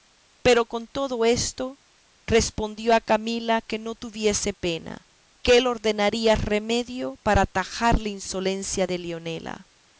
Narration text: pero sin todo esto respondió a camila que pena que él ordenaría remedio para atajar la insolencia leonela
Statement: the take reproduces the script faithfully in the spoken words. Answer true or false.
false